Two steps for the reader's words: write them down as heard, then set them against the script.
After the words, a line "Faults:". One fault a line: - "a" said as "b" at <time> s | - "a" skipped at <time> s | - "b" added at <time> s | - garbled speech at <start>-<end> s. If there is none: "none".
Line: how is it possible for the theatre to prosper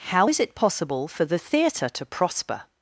how is it possible for the theatre to prosper
Faults:
none